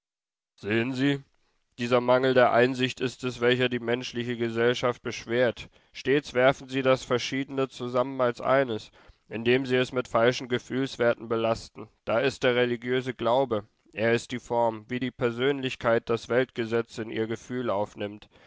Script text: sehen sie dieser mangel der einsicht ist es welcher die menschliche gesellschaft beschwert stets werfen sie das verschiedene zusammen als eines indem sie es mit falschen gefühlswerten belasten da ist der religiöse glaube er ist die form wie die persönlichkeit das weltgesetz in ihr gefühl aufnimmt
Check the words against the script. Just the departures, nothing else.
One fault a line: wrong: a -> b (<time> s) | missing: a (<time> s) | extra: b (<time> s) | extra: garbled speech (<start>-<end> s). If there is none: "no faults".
no faults